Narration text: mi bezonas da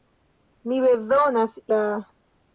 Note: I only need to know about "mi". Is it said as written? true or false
true